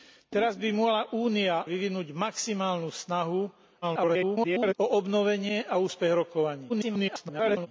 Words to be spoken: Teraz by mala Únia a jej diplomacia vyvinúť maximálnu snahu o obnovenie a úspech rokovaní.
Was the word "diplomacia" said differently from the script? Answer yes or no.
yes